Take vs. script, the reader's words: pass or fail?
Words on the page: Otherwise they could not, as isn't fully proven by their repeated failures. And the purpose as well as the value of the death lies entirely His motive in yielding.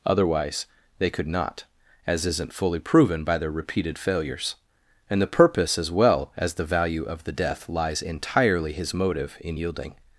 pass